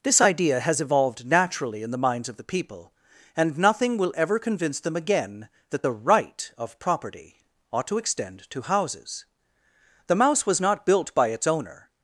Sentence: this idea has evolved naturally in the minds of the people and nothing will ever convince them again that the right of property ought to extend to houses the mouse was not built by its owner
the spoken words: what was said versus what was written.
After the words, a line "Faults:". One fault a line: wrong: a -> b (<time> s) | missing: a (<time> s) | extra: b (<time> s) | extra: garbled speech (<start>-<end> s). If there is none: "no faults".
this idea has evolved naturally in the minds of the people and nothing will ever convince them again that the right of property ought to extend to houses the mouse was not built by its owner
Faults:
no faults